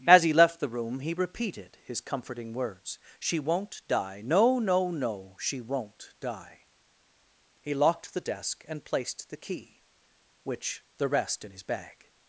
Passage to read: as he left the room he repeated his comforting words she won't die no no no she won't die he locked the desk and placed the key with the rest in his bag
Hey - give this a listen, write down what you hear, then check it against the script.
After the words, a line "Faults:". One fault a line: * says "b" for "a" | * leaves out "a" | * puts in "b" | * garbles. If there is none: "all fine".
as he left the room he repeated his comforting words she won't die no no no she won't die he locked the desk and placed the key which the rest in his bag
Faults:
* says "which" for "with"